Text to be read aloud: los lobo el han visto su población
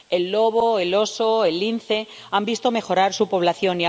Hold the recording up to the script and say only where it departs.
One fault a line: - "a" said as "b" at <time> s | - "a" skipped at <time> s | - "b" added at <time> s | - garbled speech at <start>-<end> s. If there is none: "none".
- "los" said as "el" at 0.1 s
- "oso el lince" added at 0.9 s
- "mejorar" added at 2.7 s